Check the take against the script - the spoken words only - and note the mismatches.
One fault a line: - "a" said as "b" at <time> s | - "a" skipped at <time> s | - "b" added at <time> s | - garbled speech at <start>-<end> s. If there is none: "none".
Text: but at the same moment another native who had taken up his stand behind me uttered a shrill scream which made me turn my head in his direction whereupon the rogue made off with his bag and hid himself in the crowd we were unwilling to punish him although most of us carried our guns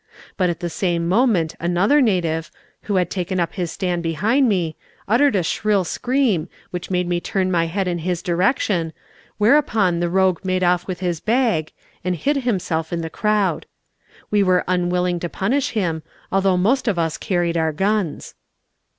none